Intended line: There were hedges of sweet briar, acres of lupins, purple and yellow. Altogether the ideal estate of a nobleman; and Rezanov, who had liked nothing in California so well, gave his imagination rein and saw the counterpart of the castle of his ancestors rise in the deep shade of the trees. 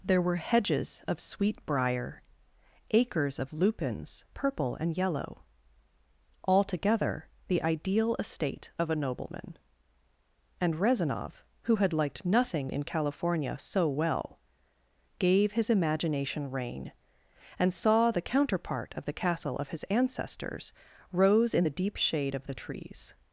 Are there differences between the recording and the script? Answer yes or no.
yes